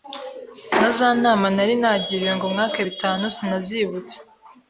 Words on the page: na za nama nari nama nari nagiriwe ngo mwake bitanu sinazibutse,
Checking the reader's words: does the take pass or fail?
fail